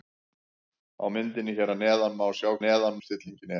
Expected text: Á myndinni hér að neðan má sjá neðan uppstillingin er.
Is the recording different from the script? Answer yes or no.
no